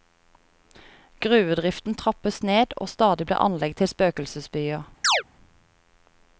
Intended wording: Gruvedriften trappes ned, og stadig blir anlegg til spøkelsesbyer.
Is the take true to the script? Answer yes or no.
yes